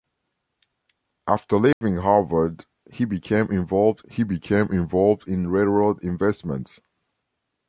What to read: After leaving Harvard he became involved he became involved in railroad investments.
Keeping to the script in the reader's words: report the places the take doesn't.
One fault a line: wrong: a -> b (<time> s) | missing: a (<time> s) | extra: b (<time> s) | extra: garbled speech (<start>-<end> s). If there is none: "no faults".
no faults